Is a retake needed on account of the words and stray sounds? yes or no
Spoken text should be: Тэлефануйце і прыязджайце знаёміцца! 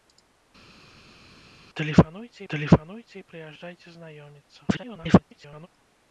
yes